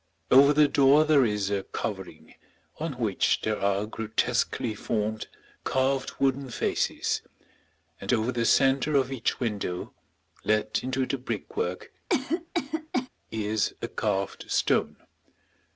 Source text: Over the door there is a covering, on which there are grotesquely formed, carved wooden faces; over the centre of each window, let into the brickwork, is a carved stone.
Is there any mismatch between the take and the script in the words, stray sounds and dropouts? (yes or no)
yes